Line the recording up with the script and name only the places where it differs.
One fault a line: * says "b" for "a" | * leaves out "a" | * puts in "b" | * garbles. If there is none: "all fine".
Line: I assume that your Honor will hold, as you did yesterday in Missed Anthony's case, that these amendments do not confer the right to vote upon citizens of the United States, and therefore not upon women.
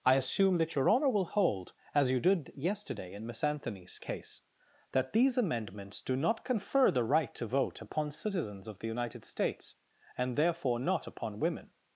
* says "Miss" for "Missed"